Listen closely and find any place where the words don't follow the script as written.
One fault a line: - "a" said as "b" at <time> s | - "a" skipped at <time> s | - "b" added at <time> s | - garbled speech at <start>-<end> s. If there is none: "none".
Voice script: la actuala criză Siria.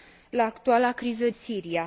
none